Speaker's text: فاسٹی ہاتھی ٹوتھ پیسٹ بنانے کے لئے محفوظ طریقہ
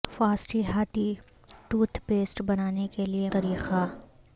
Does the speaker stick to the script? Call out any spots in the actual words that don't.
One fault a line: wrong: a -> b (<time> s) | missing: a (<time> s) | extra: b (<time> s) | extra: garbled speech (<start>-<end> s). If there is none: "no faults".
missing: محفوظ (3.3 s)